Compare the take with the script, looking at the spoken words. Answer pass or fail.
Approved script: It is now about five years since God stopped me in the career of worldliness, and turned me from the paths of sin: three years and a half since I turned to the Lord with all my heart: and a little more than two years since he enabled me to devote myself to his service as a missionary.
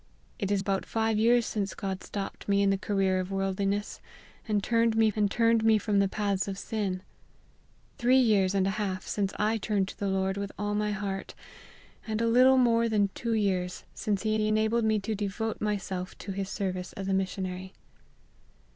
fail